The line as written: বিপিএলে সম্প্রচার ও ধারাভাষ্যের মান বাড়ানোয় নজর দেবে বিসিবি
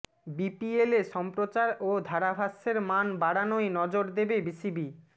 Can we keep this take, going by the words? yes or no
yes